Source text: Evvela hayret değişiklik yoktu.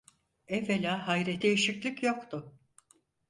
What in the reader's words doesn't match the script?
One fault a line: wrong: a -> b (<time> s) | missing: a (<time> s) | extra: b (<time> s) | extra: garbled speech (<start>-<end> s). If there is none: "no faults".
no faults